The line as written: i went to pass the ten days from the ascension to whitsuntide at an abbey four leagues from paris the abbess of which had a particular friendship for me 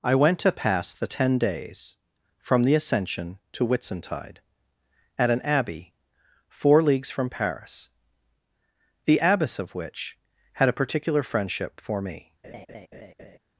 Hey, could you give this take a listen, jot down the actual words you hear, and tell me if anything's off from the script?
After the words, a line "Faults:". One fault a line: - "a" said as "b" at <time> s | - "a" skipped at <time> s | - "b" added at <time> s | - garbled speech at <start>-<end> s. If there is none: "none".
i went to pass the ten days from the ascension to whitsuntide at an abbey four leagues from paris the abbess of which had a particular friendship for me
Faults:
none